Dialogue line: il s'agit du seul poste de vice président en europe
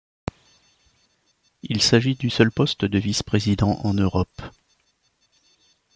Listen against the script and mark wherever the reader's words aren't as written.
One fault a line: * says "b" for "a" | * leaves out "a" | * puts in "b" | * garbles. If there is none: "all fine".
all fine